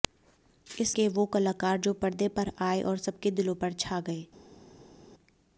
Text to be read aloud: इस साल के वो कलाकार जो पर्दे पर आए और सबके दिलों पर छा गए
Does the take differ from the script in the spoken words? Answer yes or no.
yes